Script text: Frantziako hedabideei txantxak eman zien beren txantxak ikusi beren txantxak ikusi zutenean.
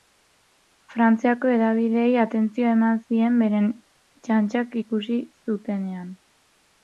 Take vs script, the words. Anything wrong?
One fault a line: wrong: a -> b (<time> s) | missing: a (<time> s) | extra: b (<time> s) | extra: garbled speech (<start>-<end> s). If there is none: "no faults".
wrong: txantxak -> atentzioa (2.2 s)
missing: beren txantxak ikusi (5.2 s)